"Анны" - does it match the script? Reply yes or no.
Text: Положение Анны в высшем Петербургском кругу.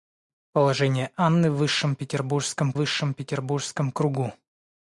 yes